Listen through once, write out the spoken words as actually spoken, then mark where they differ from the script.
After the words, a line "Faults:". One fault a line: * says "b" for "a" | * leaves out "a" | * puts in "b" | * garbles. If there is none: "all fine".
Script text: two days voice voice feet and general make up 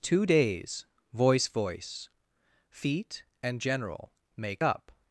two days voice voice feet and general make up
Faults:
all fine